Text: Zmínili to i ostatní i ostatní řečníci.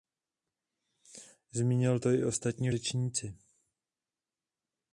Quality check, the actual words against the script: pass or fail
fail